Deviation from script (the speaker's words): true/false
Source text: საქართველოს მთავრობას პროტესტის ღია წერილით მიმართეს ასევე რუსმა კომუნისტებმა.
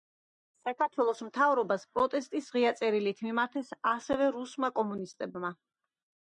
false